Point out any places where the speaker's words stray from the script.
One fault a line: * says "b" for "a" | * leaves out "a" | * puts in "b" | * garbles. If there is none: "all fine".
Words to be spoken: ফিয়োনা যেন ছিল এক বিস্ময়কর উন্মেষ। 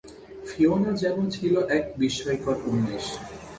all fine